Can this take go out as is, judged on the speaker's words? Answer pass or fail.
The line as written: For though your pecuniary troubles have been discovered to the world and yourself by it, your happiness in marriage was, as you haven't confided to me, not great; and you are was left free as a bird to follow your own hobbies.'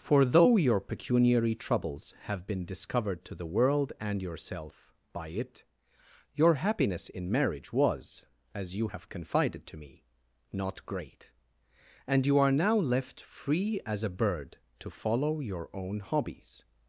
fail